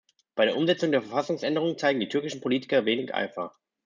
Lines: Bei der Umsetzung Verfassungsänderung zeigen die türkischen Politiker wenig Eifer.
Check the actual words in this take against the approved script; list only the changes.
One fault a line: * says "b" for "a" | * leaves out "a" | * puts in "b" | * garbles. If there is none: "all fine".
* puts in "der"